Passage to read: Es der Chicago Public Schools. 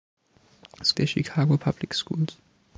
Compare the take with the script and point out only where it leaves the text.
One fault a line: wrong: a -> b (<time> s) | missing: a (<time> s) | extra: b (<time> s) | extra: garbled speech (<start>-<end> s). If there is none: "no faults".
no faults